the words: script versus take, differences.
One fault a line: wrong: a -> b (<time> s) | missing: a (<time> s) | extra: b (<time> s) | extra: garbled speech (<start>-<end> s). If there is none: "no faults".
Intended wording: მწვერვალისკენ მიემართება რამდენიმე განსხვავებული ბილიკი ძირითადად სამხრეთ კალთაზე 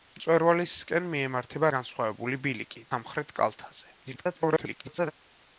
missing: რამდენიმე (1.7 s)
missing: ძირითადად (2.9 s)
extra: garbled speech (4.0-5.1 s)